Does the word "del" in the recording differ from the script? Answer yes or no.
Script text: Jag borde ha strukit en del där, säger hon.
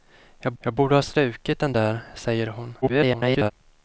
yes